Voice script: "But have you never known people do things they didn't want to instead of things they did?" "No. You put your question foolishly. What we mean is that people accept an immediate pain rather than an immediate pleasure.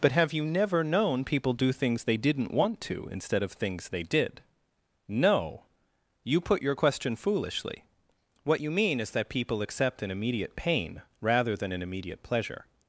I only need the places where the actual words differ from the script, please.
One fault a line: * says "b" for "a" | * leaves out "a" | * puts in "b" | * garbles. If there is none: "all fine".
* says "you" for "we"